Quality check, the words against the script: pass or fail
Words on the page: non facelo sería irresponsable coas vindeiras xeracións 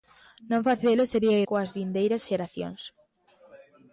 fail